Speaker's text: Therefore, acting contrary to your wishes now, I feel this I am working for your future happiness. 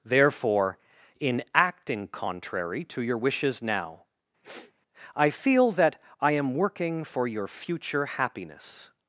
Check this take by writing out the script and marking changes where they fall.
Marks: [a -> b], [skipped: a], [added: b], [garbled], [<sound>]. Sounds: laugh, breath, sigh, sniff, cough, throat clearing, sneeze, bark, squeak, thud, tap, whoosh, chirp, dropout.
Therefore, [added: in] acting contrary to your wishes now, [sniff] I feel [this -> that] I am working for your future happiness.